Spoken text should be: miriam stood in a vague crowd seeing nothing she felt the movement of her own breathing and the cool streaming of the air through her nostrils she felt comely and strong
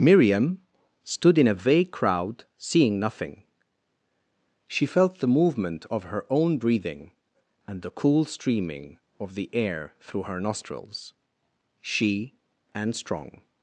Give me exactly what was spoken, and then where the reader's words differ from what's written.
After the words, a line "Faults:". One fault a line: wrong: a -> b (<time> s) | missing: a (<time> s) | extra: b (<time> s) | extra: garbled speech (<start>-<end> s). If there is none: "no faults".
miriam stood in a vague crowd seeing nothing she felt the movement of her own breathing and the cool streaming of the air through her nostrils she and strong
Faults:
missing: felt comely (12.3 s)